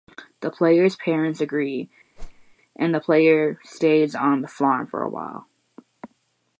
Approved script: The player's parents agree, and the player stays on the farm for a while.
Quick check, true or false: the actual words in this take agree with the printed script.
true